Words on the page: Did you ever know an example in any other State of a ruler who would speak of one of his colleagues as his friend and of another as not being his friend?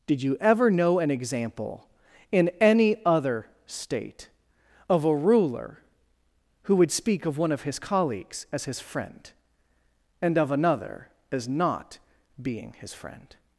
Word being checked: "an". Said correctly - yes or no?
yes